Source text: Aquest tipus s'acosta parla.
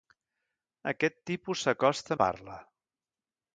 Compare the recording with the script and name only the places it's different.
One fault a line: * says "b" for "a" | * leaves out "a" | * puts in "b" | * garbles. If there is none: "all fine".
all fine